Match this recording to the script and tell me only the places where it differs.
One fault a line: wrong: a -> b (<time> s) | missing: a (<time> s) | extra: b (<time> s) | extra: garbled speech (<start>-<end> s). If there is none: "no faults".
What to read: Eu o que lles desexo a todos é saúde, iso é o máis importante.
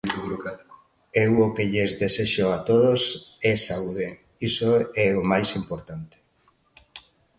no faults